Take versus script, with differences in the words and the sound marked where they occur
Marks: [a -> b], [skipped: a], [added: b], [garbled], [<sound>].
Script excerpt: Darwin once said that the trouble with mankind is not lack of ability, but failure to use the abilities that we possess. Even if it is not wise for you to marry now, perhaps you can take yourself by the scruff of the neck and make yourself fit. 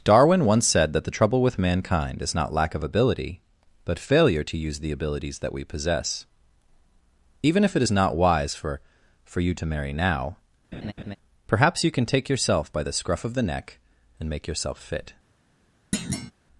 Darwin once said that the trouble with mankind is not lack of ability, but failure to use the abilities that we possess. Even if it is not wise for [added: for] you to marry now, [laugh] perhaps you can take yourself by the scruff of the neck and make yourself fit. [thud]